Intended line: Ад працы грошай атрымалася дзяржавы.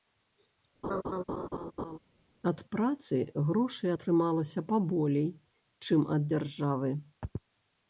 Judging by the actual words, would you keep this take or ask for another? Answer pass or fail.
fail